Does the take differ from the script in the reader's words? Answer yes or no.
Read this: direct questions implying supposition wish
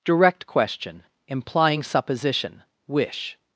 yes